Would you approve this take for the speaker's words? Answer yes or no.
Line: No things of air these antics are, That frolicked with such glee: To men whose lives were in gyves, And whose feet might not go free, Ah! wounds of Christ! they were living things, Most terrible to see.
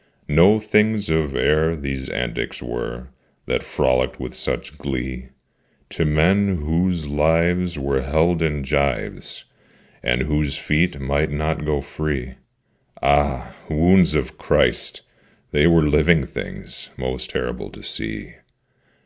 no